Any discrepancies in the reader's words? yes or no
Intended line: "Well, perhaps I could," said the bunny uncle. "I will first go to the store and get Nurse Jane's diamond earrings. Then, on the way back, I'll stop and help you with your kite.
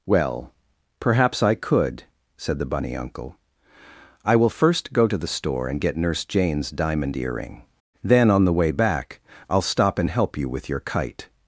yes